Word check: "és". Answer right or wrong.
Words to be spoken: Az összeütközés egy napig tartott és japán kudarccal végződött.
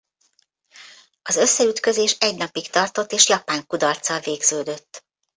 right